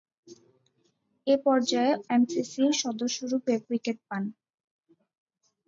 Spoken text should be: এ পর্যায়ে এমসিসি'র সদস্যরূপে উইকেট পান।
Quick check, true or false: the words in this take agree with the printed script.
true